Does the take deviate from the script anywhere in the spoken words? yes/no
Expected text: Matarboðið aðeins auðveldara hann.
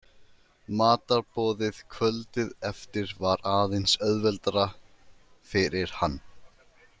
yes